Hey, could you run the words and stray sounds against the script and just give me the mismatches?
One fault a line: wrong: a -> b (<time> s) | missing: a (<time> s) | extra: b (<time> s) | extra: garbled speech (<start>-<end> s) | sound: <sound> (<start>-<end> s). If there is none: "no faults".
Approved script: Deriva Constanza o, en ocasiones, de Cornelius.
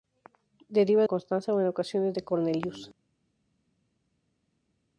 no faults